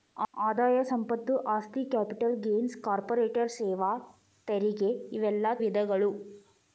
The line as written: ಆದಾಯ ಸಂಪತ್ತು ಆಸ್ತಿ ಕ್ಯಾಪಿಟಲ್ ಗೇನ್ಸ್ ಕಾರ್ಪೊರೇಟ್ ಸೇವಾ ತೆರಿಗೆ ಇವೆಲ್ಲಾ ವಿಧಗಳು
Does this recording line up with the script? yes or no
yes